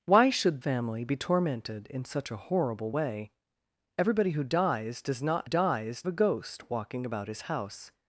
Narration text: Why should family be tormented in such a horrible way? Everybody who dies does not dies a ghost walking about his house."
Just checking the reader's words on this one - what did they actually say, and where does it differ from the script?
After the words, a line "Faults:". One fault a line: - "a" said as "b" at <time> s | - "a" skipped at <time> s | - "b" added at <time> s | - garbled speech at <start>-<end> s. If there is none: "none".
Why should family be tormented in such a horrible way? Everybody who dies does not dies a ghost walking about his house."
Faults:
none